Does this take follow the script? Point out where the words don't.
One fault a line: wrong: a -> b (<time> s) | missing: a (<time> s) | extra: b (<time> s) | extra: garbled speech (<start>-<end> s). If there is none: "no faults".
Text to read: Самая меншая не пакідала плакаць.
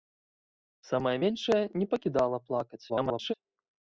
extra: garbled speech (2.9-3.3 s)